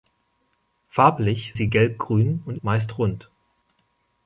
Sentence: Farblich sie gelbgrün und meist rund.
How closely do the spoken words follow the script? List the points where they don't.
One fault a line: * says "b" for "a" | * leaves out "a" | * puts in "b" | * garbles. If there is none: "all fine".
all fine